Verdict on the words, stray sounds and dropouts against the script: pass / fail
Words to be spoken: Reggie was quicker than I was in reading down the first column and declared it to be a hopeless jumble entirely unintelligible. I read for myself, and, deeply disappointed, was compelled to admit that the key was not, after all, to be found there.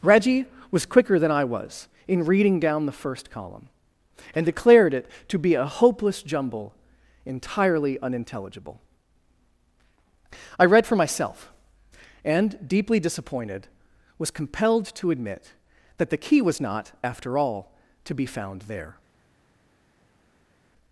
pass